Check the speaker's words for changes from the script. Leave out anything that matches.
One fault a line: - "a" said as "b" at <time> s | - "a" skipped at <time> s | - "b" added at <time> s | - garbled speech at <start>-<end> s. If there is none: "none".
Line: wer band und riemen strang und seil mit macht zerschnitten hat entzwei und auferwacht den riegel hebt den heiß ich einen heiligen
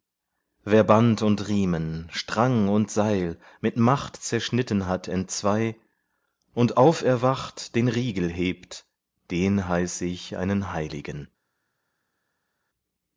none